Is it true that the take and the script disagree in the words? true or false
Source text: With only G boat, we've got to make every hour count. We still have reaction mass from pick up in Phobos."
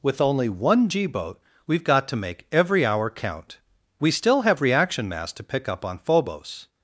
true